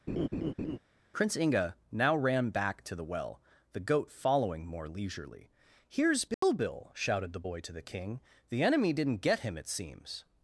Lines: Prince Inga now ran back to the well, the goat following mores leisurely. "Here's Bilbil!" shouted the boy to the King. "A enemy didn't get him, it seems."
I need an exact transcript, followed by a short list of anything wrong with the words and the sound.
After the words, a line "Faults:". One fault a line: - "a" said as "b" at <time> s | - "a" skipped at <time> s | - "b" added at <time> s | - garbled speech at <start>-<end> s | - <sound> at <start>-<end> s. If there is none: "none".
Prince Inga now ran back to the well, the goat following more leisurely. "Here's Bilbil!" shouted the boy to the King. "The enemy didn't get him, it seems."
Faults:
- laugh at 0.1-0.8 s
- "mores" said as "more" at 4.7 s
- dropout at 6.3-6.4 s
- "A" said as "The" at 8.5 s